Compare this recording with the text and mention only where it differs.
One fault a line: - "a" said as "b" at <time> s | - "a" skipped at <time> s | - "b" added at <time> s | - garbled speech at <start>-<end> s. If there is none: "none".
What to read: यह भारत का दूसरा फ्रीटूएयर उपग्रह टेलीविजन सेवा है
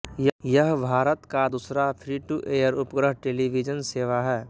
none